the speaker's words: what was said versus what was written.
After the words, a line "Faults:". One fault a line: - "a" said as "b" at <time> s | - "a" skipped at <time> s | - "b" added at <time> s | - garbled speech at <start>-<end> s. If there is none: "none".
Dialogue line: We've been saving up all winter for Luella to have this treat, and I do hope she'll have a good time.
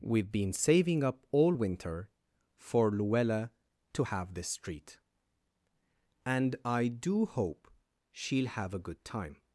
We've been saving up all winter for Luella to have this treat, and I do hope she'll have a good time.
Faults:
none